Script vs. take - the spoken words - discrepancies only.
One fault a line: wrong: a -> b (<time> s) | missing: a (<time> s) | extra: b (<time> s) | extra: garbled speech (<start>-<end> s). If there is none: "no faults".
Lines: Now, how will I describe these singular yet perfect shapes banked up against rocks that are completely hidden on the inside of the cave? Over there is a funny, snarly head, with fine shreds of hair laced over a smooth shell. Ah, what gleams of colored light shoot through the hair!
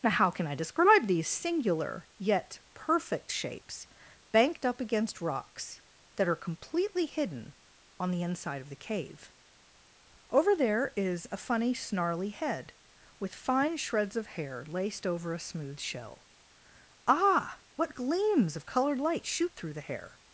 wrong: will -> can (0.3 s)